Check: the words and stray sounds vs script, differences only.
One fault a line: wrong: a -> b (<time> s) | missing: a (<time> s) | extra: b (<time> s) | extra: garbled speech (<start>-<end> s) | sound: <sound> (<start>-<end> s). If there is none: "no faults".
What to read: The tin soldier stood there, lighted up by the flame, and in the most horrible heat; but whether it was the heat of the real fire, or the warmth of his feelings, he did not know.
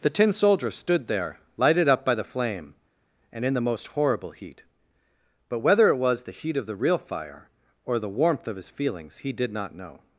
no faults